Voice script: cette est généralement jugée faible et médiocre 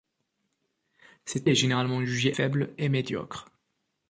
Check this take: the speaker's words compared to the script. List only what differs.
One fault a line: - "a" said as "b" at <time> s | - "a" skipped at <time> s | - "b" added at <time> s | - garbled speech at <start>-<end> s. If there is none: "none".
none